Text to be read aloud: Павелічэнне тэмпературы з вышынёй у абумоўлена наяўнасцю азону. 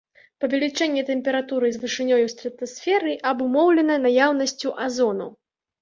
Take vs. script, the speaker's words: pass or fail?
fail